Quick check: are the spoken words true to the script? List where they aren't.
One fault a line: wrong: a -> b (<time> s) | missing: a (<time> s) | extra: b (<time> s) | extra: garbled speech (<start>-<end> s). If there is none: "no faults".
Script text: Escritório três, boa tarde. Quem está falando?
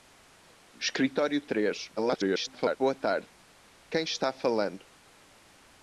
extra: garbled speech (2.0-2.8 s)